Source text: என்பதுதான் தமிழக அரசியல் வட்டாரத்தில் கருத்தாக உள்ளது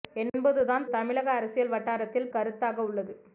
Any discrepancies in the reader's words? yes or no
no